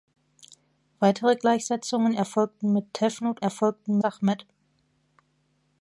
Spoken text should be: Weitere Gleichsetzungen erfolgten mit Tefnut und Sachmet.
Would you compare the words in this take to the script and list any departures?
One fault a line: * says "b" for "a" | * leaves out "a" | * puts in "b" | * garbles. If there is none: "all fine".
* says "erfolgten" for "und"